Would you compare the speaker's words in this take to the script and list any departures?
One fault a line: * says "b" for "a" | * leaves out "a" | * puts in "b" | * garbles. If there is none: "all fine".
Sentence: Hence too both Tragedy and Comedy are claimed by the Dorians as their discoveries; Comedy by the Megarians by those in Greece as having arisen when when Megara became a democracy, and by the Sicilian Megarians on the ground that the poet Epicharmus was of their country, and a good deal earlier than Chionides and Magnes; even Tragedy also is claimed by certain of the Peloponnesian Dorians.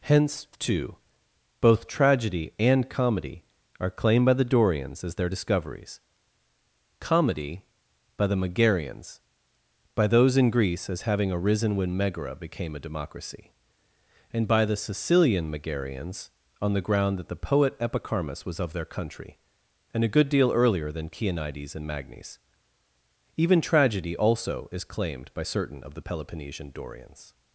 * leaves out "when"